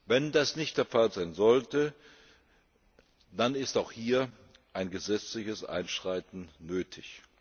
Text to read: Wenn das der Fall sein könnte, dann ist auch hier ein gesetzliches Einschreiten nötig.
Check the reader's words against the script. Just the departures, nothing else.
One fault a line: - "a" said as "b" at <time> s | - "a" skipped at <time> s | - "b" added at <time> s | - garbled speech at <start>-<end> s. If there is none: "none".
- "nicht" added at 0.6 s
- "könnte" said as "sollte" at 1.3 s